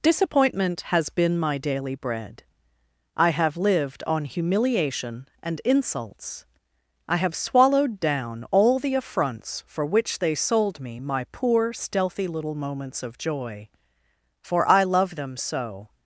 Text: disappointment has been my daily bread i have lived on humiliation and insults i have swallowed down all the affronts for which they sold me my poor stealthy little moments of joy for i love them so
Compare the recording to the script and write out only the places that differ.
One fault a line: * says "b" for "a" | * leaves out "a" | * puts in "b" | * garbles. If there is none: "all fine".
all fine